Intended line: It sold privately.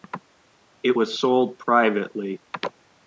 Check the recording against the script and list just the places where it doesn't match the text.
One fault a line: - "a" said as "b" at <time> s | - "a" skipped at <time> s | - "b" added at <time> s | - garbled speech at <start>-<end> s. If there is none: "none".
- "was" added at 0.9 s